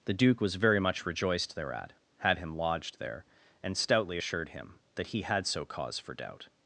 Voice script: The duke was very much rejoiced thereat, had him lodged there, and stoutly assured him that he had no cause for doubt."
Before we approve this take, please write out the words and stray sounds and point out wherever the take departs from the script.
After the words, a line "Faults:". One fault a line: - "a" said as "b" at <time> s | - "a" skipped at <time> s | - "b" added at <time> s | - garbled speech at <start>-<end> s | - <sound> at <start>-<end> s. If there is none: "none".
The duke was very much rejoiced thereat, had him lodged there, and stoutly assured him that he had so cause for doubt."
Faults:
- "no" said as "so" at 5.5 s